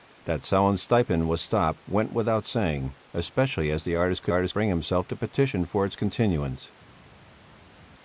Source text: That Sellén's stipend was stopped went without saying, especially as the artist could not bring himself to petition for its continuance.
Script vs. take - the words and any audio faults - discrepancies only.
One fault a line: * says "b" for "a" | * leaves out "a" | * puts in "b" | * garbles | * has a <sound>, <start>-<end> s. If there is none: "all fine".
* says "artist" for "not"